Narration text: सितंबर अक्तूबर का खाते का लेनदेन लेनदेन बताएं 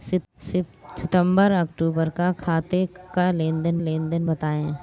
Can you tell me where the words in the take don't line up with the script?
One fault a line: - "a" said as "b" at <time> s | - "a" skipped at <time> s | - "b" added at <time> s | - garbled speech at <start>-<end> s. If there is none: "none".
none